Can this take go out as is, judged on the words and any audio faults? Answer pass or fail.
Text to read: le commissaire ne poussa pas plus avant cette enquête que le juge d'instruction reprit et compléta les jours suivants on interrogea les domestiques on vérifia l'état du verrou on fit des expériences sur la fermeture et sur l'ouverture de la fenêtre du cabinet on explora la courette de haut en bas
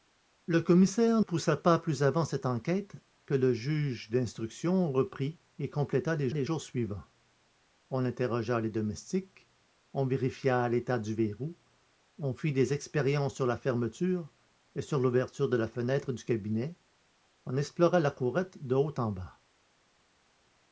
fail